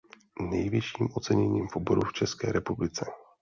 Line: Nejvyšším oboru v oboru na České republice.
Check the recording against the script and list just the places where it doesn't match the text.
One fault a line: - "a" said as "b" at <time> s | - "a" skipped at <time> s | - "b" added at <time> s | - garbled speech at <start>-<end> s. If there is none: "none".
- "oboru" said as "oceněním" at 1.1 s
- "na" said as "v" at 2.0 s